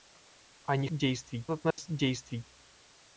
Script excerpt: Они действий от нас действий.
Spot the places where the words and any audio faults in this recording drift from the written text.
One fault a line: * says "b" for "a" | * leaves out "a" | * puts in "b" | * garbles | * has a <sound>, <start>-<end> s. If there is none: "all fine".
* has a dropout, 1.7-1.8 s